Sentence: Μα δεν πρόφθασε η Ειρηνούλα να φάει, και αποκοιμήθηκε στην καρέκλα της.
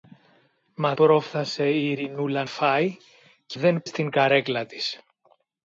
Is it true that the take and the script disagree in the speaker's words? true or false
true